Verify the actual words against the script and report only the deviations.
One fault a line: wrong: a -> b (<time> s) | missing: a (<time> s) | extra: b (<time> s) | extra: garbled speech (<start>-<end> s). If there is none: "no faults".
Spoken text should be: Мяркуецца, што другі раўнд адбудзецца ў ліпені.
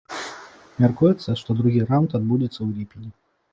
no faults